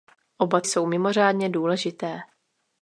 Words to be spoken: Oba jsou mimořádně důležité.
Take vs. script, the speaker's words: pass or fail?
pass